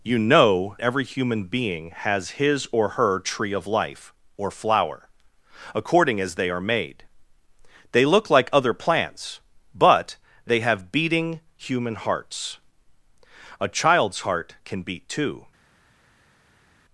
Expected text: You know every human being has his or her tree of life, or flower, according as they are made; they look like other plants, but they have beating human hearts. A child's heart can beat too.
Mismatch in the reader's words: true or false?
false